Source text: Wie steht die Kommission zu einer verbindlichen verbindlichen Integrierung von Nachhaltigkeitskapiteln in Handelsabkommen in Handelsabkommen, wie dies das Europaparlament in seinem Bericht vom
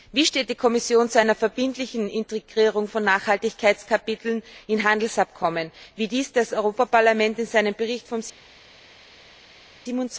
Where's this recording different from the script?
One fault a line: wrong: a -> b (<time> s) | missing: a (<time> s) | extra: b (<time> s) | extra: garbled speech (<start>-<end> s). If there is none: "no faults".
missing: verbindlichen (2.1 s)
missing: in Handelsabkommen (5.7 s)